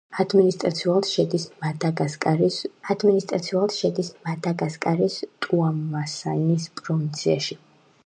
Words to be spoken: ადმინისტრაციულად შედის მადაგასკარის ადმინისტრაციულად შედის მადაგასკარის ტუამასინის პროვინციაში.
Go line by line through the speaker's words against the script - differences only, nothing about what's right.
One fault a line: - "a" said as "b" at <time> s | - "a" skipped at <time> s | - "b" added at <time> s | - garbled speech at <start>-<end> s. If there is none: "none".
none